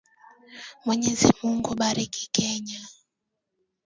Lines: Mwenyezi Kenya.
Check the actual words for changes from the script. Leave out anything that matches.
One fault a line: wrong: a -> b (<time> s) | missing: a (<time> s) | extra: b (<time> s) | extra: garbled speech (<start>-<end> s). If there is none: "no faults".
extra: Mungu Bariki (1.4 s)